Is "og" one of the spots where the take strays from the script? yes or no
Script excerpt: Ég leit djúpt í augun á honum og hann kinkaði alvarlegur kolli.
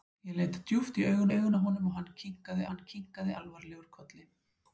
no